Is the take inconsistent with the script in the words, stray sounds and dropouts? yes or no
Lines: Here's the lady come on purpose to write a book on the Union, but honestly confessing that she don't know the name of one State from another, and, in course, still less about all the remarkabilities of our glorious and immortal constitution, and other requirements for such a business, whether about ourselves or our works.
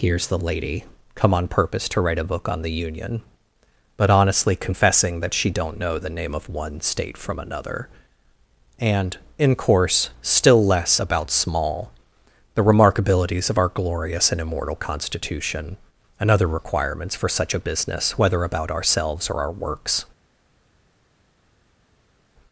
yes